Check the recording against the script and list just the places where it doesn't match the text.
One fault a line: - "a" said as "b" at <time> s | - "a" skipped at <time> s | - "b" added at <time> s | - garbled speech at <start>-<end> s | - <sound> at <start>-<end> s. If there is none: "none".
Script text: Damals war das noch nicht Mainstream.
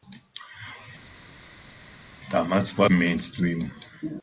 - "das noch nicht" skipped at 2.9 s